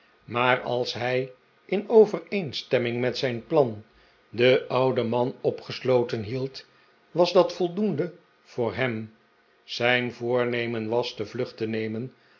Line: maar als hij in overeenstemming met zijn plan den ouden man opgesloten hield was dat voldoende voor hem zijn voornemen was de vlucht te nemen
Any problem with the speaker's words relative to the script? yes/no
no